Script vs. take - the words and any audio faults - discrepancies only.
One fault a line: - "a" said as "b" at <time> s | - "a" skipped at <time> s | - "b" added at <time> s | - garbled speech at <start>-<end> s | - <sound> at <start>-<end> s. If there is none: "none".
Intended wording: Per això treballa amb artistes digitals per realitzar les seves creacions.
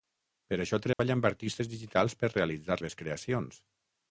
- dropout at 0.9-1.0 s
- "les" skipped at 2.8 s